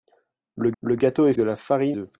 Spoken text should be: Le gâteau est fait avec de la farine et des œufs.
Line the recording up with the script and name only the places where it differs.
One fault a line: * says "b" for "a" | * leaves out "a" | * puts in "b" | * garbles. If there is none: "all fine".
* puts in "le"
* leaves out "fait avec"
* leaves out "et des"